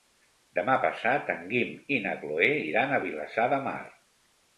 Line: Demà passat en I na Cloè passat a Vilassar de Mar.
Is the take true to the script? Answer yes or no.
no